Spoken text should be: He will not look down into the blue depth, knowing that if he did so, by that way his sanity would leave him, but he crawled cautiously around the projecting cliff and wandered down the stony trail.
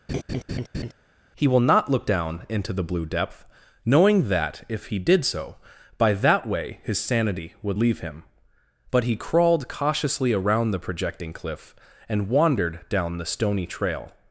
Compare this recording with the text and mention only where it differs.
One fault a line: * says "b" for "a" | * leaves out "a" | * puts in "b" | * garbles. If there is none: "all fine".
all fine